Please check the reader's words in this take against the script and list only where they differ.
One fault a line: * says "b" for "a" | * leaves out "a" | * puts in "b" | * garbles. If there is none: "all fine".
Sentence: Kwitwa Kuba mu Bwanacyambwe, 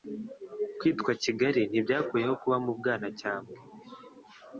* puts in "Kigali ntibyakuyeho"